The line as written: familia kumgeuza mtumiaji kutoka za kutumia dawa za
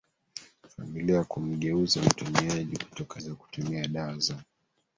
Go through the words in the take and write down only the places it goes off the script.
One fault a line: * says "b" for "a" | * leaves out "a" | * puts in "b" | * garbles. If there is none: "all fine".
all fine